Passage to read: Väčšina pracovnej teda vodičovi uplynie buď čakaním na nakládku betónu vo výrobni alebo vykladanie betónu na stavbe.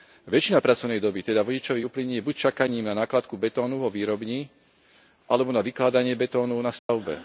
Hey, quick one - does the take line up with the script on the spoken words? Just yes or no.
no